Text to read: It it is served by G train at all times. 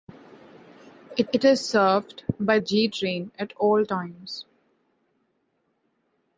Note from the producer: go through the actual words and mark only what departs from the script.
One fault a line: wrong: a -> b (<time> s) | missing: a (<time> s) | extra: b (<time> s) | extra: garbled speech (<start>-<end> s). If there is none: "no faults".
no faults